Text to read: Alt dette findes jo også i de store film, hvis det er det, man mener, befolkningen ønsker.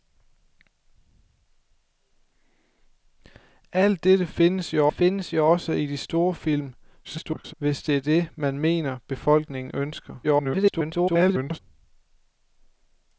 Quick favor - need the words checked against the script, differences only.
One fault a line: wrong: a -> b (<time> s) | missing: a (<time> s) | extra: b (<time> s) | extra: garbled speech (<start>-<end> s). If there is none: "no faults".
extra: findes jo (4.9 s)
extra: garbled speech (7.0-7.5 s)
extra: garbled speech (10.2-11.6 s)